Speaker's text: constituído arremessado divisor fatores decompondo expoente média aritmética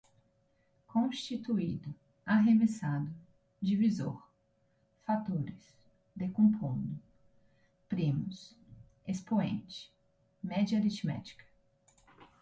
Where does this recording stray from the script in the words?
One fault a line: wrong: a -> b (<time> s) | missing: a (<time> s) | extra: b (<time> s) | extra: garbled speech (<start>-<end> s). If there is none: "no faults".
extra: primos (7.9 s)